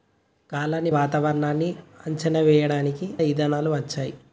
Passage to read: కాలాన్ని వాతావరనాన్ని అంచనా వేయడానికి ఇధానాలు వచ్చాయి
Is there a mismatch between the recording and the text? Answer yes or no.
no